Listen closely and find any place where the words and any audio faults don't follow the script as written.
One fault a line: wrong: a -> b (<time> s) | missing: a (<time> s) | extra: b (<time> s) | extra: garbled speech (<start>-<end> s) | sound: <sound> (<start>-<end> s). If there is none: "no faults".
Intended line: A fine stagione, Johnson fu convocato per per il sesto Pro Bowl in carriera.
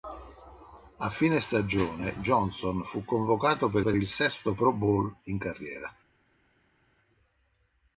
no faults